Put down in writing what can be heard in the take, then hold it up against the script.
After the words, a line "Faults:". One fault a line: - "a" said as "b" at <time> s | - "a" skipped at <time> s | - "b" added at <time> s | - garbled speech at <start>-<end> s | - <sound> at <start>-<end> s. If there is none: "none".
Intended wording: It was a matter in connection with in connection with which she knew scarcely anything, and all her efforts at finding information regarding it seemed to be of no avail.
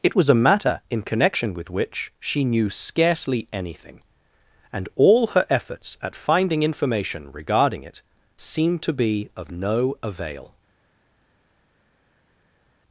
It was a matter in connection with which she knew scarcely anything, and all her efforts at finding information regarding it seemed to be of no avail.
Faults:
- "in connection with" skipped at 1.7 s